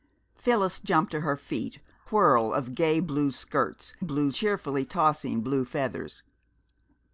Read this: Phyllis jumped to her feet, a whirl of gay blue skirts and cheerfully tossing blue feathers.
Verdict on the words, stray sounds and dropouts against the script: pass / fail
fail